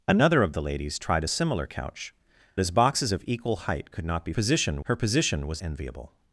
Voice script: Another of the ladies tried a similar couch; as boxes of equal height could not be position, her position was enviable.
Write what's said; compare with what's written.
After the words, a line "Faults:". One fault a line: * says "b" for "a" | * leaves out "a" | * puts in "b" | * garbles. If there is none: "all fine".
Another of the ladies tried a similar couch; as boxes of equal height could not be position, her position was enviable.
Faults:
all fine